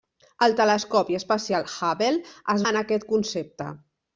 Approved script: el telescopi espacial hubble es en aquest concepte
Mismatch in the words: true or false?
false